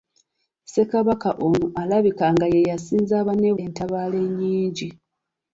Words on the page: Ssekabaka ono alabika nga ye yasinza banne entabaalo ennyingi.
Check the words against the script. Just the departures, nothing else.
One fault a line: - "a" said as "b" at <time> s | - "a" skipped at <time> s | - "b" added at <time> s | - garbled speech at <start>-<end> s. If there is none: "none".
none